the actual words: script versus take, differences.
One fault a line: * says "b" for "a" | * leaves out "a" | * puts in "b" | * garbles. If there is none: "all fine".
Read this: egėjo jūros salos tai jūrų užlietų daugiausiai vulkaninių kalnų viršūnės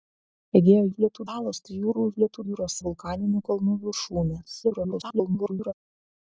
* says "užlietų" for "jūros"
* says "jūros" for "daugiausiai"
* garbles